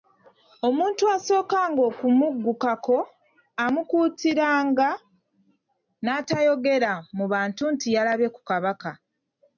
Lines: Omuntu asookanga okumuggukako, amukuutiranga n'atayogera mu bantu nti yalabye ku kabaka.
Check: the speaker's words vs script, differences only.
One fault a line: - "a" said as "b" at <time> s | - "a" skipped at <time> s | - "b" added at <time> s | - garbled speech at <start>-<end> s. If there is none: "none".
none